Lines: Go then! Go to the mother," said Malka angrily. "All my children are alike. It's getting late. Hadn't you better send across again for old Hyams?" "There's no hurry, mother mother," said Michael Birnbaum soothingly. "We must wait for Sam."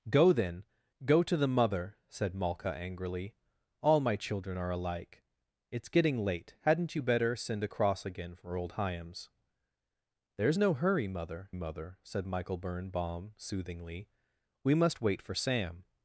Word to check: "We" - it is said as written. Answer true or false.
true